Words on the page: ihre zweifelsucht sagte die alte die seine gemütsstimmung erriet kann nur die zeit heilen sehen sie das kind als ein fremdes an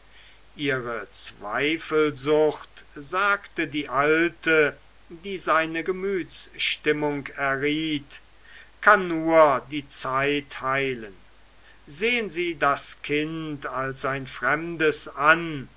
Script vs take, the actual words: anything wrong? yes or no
no